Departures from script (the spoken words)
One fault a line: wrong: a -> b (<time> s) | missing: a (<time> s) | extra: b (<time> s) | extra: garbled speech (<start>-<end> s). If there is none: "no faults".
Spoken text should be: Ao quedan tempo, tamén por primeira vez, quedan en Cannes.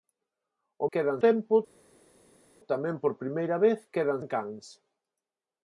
no faults